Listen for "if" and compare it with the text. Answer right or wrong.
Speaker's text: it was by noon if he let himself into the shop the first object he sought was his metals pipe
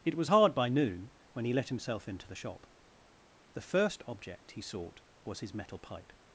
wrong